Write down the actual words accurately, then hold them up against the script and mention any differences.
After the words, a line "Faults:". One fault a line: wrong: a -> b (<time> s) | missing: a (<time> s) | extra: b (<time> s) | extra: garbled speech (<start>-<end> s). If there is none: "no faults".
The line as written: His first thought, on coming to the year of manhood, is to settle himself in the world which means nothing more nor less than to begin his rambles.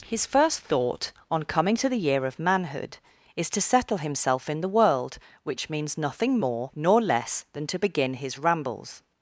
His first thought, on coming to the year of manhood, is to settle himself in the world which means nothing more nor less than to begin his rambles.
Faults:
no faults